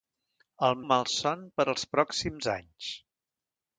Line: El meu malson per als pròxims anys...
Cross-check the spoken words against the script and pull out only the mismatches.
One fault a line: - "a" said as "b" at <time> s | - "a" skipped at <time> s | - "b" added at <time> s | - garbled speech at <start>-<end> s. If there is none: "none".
- "meu" skipped at 0.8 s